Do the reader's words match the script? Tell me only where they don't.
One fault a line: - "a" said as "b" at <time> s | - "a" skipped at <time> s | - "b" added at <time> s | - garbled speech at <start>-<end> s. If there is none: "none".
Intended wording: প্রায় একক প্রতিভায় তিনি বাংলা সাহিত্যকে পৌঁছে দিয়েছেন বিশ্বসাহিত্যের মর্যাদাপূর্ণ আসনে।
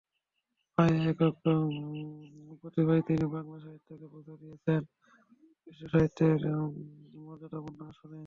none